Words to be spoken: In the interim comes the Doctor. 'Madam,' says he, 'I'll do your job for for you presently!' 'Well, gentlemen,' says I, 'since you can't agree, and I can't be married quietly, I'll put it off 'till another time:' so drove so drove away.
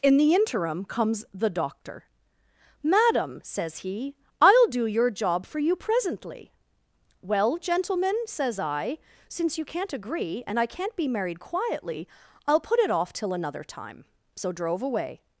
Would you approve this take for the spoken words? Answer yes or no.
no